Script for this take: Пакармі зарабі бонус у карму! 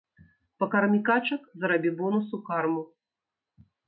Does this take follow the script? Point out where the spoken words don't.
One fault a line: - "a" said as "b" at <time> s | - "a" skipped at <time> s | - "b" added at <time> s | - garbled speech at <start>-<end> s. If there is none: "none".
- "качак" added at 1.1 s